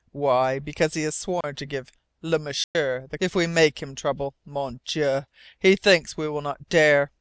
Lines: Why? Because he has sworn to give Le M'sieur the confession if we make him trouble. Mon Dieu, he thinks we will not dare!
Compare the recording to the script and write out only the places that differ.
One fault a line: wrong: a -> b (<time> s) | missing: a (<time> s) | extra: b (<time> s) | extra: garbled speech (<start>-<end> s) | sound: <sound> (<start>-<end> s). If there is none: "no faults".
sound: dropout (1.4-1.4 s)
sound: dropout (2.6-2.8 s)
missing: confession (3.2 s)